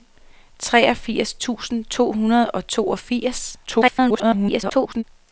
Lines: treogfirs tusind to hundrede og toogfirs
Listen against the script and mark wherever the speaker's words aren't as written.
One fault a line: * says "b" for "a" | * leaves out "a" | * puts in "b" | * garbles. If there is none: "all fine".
* garbles